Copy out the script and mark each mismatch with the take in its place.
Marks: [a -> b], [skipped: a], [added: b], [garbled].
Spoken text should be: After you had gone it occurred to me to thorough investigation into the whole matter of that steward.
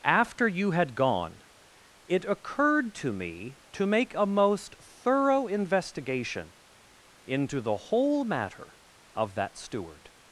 After you had gone it occurred to me to [added: make a most] thorough investigation into the whole matter of that steward.